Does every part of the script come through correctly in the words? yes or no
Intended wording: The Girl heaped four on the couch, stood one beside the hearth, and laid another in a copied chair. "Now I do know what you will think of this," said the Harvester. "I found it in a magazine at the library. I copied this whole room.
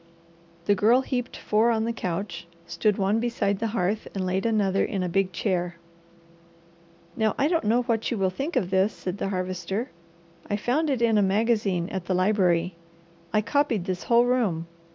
no